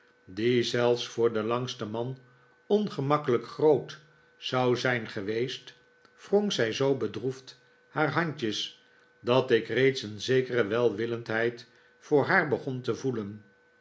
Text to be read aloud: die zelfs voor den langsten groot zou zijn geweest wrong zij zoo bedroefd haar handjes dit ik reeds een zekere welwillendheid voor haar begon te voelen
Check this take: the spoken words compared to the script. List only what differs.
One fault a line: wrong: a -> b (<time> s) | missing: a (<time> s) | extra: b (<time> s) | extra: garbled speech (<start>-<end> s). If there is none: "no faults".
extra: man ongemakkelijk (1.9 s)
wrong: dit -> dat (9.2 s)